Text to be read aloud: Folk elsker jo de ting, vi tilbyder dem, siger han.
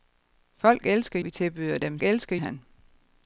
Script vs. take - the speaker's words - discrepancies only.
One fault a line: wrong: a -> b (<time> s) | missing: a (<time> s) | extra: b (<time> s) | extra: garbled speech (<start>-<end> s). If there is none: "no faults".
missing: jo de ting (1.2 s)
wrong: siger -> elsker (2.0 s)